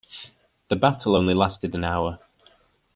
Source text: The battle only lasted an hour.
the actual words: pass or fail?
pass